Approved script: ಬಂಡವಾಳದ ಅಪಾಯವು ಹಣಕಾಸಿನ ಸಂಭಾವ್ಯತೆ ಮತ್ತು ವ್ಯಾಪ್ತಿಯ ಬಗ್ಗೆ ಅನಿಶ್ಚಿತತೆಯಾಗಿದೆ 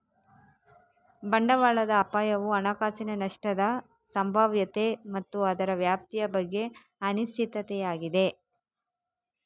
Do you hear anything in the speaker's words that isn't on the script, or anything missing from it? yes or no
yes